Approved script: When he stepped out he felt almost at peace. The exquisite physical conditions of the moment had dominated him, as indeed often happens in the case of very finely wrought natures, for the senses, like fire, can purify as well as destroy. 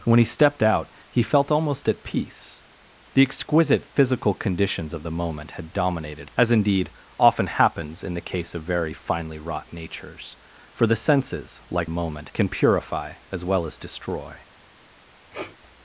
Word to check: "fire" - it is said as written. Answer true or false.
false